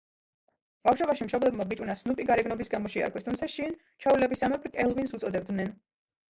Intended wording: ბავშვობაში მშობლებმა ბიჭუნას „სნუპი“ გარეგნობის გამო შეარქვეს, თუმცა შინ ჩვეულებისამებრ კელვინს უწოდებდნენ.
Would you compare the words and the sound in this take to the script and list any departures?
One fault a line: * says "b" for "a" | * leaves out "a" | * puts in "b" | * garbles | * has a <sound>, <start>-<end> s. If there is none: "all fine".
all fine